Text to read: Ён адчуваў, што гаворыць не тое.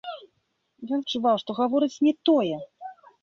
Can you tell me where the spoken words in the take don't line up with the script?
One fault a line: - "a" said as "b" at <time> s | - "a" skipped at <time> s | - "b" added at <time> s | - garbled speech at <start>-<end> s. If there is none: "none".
none